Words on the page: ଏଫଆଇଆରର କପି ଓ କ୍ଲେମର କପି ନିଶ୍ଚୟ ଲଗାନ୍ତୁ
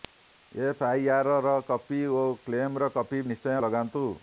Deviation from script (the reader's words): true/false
false